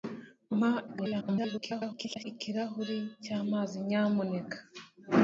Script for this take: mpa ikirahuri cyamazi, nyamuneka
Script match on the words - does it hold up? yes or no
no